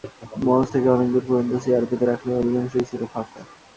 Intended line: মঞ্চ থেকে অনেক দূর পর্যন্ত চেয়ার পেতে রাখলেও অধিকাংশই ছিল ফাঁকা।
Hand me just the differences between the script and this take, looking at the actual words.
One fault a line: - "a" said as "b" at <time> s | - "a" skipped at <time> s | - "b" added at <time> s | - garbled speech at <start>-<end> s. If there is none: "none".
none